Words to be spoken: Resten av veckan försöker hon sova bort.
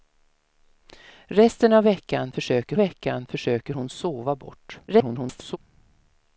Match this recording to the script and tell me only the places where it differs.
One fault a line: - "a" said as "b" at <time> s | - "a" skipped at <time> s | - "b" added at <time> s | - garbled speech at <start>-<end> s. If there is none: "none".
- "veckan försöker" added at 2.8 s
- garbled speech at 4.9-5.6 s